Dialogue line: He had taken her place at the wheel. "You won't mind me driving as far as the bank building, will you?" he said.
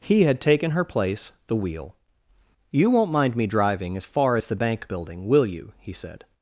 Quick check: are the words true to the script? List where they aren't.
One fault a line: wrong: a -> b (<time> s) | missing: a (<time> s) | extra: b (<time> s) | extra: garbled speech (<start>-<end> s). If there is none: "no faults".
missing: at (1.3 s)